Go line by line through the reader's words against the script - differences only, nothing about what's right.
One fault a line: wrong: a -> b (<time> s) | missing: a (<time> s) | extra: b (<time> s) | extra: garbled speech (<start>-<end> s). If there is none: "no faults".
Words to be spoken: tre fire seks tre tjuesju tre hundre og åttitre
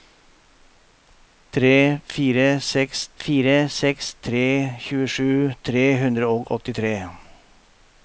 extra: fire seks (3.2 s)